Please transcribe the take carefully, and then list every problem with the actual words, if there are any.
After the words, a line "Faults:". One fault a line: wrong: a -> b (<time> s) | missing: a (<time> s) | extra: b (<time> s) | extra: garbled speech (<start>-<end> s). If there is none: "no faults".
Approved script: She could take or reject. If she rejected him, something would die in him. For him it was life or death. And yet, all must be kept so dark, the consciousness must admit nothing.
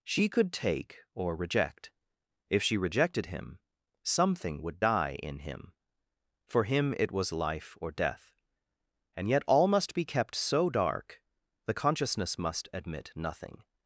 She could take or reject. If she rejected him, something would die in him. For him it was life or death. And yet, all must be kept so dark, the consciousness must admit nothing.
Faults:
no faults